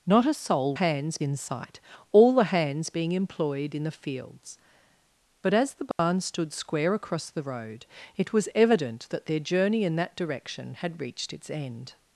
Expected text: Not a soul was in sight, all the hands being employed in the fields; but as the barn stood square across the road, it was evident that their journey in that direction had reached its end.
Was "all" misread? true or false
false